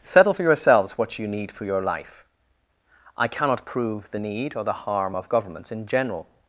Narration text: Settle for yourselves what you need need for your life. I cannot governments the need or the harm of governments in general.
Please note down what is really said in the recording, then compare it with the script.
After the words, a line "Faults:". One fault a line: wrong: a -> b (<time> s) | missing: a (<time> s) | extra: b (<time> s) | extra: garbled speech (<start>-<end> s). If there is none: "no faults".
Settle for yourselves what you need for your life. I cannot prove the need or the harm of governments in general.
Faults:
missing: need (1.5 s)
wrong: governments -> prove (3.7 s)